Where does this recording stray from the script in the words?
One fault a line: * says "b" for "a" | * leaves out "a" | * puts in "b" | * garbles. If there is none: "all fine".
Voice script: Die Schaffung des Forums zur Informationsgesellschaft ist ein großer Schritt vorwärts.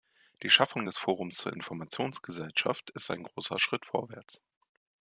all fine